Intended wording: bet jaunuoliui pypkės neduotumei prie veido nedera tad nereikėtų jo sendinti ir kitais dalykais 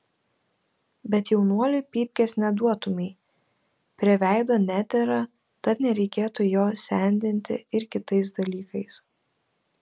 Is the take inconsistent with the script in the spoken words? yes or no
no